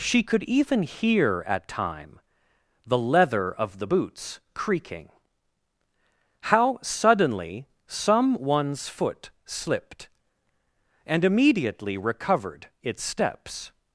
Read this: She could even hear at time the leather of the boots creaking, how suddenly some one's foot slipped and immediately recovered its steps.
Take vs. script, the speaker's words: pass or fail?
pass